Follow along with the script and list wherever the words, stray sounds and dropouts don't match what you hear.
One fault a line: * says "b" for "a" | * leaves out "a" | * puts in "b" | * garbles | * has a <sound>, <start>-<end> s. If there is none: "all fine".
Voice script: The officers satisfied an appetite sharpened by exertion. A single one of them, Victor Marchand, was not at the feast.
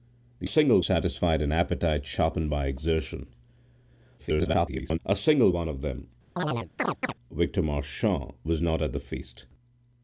* says "single" for "officers"
* garbles
* has a chirp, 6.4-7.1 s